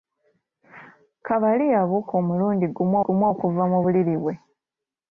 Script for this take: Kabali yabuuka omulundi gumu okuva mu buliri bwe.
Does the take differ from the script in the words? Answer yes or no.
yes